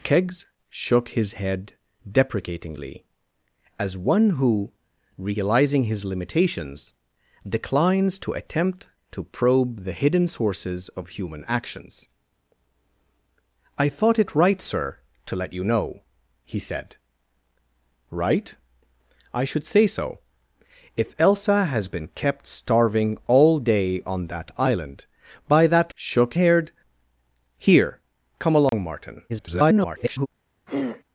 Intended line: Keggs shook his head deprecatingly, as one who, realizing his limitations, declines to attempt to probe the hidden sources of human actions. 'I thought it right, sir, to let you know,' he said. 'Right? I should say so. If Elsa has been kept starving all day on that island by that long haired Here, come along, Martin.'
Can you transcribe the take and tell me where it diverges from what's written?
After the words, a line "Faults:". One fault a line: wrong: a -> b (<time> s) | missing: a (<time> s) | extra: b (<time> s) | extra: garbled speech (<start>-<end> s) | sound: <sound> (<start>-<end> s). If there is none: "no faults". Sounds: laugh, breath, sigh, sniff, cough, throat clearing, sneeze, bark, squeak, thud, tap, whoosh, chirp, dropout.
Keggs shook his head deprecatingly, as one who, realizing his limitations, declines to attempt to probe the hidden sources of human actions. 'I thought it right, sir, to let you know,' he said. 'Right? I should say so. If Elsa has been kept starving all day on that island by that shook haired Here, come along, Martin.' [garbled]
Faults:
wrong: long -> shook (25.9 s)
sound: dropout (28.7-28.7 s)
extra: garbled speech (29.3-30.3 s)
sound: throat clearing (30.7-31.0 s)